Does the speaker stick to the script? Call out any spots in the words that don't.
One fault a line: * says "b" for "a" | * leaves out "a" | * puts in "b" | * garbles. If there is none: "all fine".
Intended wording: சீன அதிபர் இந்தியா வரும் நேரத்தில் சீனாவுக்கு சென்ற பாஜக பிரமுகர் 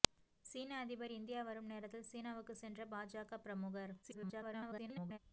* garbles